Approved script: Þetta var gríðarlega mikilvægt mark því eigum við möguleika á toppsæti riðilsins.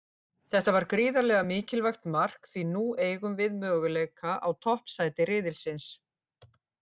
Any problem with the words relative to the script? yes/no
yes